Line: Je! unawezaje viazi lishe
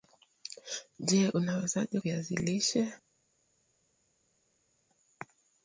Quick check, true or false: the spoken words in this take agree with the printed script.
true